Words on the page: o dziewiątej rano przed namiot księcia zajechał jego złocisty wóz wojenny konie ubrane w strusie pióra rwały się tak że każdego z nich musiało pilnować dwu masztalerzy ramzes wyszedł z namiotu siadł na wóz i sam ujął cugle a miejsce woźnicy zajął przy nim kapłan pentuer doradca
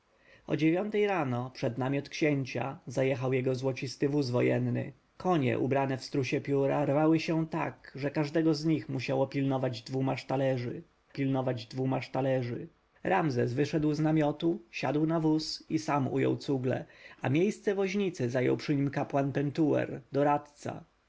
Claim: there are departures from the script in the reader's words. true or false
true